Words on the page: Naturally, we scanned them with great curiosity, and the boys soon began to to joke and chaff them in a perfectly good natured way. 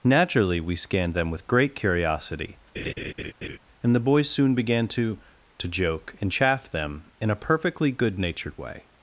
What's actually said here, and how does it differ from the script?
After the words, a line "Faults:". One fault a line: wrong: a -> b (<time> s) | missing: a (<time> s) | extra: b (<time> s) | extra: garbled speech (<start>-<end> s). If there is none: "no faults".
Naturally, we scanned them with great curiosity, and the boys soon began to to joke and chaff them in a perfectly good natured way.
Faults:
no faults